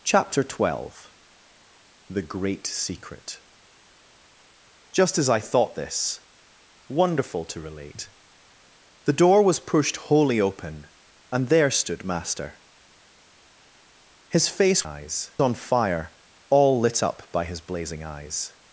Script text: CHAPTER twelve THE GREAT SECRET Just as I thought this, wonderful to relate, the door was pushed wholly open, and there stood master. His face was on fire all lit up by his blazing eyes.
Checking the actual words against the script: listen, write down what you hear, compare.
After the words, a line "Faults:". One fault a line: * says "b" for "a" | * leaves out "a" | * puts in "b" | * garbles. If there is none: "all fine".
CHAPTER twelve THE GREAT SECRET Just as I thought this, wonderful to relate, the door was pushed wholly open, and there stood master. His face eyes on fire all lit up by his blazing eyes.
Faults:
* says "eyes" for "was"